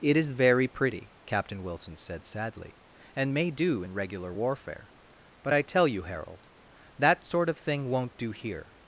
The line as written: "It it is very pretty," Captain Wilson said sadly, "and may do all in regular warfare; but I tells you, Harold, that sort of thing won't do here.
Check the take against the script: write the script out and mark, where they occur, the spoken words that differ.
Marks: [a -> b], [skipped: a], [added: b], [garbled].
"It [skipped: it] is very pretty," Captain Wilson said sadly, "and may do [skipped: all] in regular warfare; but I [tells -> tell] you, Harold, that sort of thing won't do here.